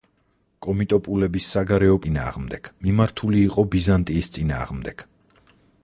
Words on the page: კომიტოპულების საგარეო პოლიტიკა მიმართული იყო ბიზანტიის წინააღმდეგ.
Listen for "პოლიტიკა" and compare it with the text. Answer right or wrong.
wrong